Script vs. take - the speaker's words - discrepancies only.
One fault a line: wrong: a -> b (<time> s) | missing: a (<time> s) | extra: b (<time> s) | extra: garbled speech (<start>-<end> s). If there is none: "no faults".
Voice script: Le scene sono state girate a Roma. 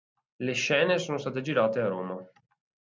no faults